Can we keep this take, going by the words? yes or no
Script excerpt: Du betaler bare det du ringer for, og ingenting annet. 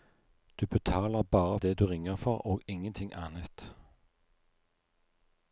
yes